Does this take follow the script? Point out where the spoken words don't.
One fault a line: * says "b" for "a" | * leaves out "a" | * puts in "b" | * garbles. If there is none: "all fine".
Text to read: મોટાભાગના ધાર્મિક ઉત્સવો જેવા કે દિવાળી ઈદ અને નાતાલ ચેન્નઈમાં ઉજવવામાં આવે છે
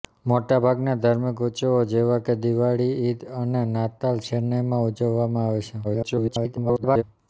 * garbles